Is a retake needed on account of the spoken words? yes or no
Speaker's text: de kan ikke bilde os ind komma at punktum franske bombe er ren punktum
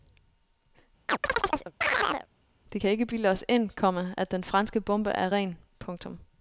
yes